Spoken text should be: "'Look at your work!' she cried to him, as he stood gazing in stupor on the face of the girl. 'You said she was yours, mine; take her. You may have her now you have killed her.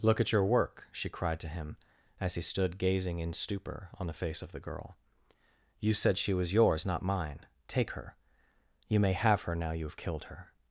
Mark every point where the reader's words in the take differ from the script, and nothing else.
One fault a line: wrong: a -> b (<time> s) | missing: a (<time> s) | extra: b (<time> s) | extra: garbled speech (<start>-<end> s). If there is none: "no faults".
extra: not (6.8 s)